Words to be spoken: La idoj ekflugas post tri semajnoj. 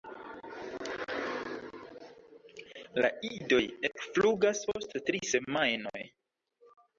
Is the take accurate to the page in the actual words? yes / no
yes